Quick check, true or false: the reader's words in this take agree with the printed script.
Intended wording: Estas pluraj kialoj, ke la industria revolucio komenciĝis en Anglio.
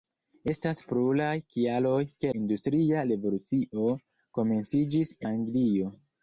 false